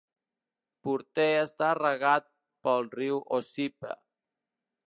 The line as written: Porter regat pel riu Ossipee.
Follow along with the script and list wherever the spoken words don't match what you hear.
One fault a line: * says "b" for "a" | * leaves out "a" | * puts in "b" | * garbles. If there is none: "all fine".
* puts in "està"